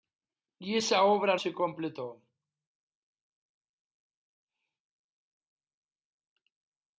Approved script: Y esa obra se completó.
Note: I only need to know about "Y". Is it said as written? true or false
true